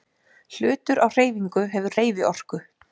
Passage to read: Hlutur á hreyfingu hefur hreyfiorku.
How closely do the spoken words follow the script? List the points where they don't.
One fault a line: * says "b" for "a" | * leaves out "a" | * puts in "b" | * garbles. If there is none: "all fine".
all fine